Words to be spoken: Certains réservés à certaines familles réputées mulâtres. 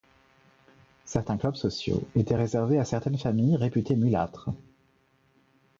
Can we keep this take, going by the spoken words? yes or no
no